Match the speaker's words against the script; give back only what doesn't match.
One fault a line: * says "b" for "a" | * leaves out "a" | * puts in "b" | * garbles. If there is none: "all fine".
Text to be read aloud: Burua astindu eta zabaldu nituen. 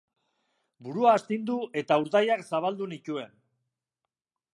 * puts in "urdaiak"